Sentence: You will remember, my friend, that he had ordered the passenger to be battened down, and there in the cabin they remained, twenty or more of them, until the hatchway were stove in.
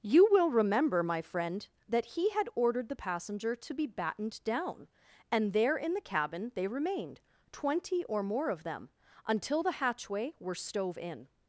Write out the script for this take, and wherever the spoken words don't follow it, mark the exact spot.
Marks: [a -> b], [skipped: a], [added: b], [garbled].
You will remember, my friend, that he had ordered the passenger to be battened down, and there in the cabin they remained, twenty or more of them, until the hatchway were stove in.